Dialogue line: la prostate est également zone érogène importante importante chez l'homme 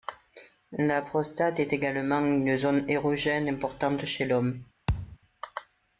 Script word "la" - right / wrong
right